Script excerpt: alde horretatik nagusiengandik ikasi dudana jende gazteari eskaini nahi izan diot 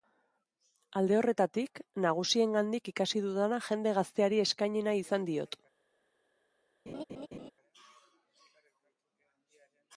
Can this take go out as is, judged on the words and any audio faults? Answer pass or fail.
fail